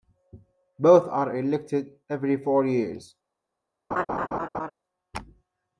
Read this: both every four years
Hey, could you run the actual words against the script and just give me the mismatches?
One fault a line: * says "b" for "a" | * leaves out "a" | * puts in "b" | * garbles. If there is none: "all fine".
* puts in "are elected"